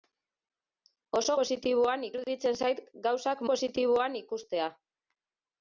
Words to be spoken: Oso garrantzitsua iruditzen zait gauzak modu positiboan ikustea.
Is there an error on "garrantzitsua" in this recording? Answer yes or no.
yes